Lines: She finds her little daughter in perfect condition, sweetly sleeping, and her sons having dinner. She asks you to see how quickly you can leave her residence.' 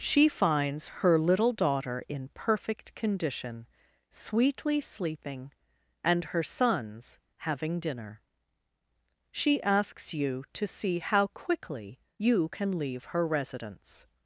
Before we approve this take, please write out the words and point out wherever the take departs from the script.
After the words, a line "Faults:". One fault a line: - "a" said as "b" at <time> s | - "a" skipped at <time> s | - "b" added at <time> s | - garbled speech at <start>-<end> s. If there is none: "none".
She finds her little daughter in perfect condition, sweetly sleeping, and her sons having dinner. She asks you to see how quickly you can leave her residence.'
Faults:
none